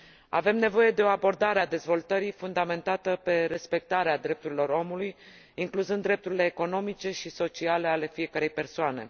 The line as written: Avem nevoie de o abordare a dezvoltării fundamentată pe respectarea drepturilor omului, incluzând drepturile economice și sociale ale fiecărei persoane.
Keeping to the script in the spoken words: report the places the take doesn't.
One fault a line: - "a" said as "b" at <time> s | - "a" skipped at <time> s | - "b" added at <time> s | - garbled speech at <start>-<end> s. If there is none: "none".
none